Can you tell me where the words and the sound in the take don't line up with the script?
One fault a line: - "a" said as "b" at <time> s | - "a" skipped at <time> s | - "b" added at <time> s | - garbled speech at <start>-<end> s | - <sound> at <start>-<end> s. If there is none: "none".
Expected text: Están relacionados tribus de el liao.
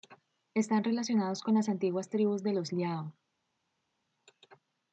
- "con las antiguas" added at 1.4 s
- "el" said as "los" at 2.5 s